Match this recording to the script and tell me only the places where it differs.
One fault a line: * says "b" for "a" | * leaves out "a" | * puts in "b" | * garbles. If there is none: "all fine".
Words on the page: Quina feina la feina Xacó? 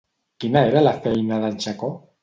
* says "era" for "feina"
* puts in "d'en"